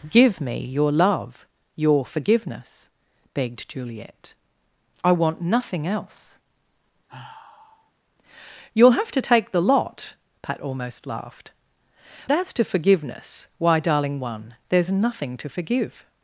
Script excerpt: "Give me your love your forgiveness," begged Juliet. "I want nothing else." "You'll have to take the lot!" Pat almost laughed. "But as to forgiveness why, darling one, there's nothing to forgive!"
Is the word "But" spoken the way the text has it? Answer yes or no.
no